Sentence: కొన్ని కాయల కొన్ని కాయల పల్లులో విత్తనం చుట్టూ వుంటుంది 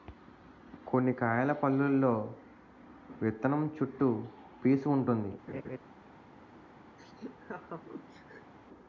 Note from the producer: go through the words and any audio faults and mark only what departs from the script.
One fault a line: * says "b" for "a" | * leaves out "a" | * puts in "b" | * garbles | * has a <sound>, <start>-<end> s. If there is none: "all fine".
* leaves out "కొన్ని కాయల"
* puts in "పీసూ"
* has a laugh, 5.5-5.8 s
* has a laugh, 7.0-8.5 s